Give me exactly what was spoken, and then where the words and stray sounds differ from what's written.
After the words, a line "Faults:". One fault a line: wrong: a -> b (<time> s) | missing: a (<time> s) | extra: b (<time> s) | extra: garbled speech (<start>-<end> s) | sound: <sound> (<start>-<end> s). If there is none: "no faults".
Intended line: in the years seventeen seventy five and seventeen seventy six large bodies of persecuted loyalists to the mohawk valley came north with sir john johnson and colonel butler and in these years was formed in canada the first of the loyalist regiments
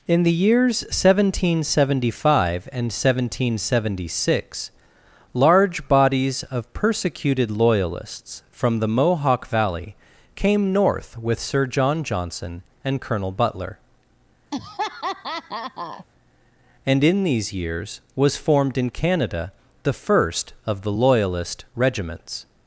in the years seventeen seventy five and seventeen seventy six large bodies of persecuted loyalists from the mohawk valley came north with sir john johnson and colonel butler and in these years was formed in canada the first of the loyalist regiments
Faults:
wrong: to -> from (8.5 s)
sound: laugh (14.5-16.1 s)